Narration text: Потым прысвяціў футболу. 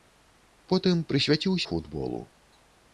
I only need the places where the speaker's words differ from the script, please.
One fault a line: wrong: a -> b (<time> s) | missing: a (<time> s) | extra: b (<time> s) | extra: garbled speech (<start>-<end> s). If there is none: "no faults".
no faults